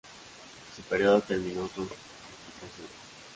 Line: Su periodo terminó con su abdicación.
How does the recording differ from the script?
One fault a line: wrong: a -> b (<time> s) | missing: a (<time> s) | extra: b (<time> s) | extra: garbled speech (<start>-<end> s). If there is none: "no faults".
missing: su (1.9 s)